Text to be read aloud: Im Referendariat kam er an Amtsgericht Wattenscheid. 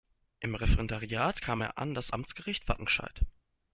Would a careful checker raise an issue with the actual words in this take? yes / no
yes